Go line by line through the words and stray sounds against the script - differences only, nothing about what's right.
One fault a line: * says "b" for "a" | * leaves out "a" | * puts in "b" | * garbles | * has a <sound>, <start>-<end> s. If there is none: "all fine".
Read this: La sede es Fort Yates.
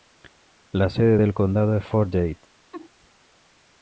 * puts in "del condado"
* has a laugh, 2.7-2.9 s